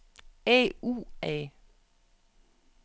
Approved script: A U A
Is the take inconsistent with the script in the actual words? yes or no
no